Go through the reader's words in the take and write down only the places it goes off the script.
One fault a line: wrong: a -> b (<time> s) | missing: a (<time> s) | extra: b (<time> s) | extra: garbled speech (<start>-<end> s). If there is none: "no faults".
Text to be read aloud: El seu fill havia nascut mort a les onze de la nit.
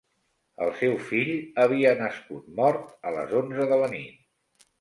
no faults